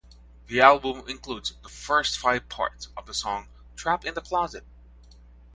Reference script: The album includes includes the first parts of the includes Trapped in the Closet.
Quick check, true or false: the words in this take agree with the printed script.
false